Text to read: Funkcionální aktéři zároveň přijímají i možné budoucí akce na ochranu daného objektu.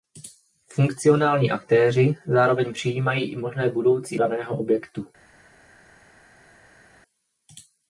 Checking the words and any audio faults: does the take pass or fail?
fail